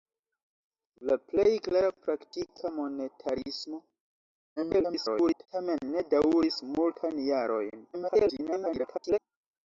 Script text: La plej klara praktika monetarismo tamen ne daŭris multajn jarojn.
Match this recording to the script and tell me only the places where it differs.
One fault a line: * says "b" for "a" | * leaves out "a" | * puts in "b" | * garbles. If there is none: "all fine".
* garbles
* garbles